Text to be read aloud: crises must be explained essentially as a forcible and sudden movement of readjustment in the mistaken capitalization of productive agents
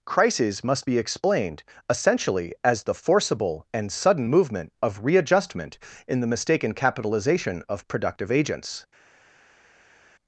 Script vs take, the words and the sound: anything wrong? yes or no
yes